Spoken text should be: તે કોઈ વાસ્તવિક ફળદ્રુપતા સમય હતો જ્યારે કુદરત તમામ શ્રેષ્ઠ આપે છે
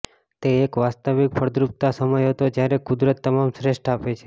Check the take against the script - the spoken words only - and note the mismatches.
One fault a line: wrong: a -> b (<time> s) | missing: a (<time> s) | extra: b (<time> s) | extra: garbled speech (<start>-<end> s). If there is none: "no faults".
wrong: કોઈ -> એક (0.6 s)